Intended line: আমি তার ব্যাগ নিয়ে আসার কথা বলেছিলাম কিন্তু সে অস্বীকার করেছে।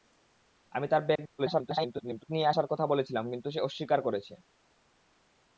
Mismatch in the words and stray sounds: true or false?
true